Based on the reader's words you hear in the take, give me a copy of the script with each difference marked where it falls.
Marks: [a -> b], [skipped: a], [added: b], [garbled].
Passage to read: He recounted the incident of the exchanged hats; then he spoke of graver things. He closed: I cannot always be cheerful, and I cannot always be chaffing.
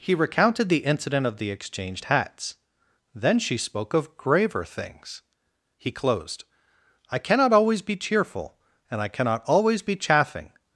He recounted the incident of the exchanged hats; then [he -> she] spoke of graver things. He closed: I cannot always be cheerful, and I cannot always be chaffing.